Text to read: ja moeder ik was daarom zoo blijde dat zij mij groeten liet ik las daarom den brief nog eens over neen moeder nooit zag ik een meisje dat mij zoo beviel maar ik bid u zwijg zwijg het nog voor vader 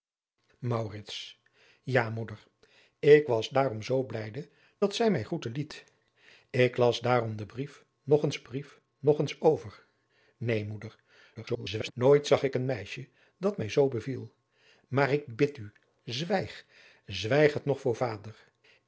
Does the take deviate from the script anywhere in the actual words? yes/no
yes